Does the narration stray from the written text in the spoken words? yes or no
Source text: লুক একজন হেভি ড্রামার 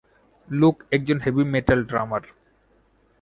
yes